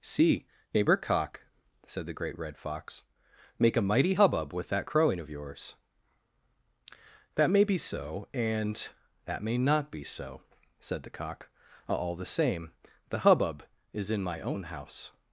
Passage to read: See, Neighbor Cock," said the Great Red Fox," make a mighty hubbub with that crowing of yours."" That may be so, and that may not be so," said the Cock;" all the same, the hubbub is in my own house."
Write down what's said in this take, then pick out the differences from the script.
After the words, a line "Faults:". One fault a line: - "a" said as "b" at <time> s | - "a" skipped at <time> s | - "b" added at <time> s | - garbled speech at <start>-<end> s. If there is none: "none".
See, Neighbor Cock," said the Great Red Fox," make a mighty hubbub with that crowing of yours."" That may be so, and that may not be so," said the Cock;" all the same, the hubbub is in my own house."
Faults:
none